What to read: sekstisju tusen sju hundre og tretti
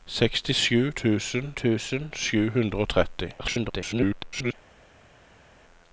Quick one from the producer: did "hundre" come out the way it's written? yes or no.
yes